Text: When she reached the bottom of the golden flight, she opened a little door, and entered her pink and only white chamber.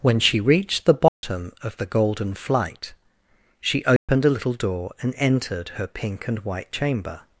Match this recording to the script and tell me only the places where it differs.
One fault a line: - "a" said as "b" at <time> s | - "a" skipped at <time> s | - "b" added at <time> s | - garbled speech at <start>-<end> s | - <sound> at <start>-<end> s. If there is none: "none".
- dropout at 1.1-1.2 s
- dropout at 4.0-4.1 s
- "only" skipped at 6.4 s